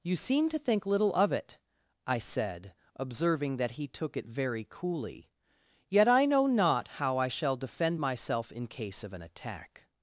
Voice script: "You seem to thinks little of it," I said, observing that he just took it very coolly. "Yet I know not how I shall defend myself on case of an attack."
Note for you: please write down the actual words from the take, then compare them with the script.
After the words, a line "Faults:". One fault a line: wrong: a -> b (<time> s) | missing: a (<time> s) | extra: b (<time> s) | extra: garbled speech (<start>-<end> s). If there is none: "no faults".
"You seem to think little of it," I said, observing that he took it very coolly. "Yet I know not how I shall defend myself in case of an attack."
Faults:
wrong: thinks -> think (0.6 s)
missing: just (3.9 s)
wrong: on -> in (8.5 s)